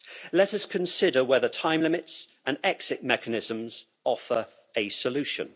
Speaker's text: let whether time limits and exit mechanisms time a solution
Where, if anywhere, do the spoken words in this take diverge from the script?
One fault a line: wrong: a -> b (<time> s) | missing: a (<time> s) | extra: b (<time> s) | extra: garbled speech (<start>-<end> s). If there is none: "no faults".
extra: us consider (0.5 s)
wrong: time -> offer (4.0 s)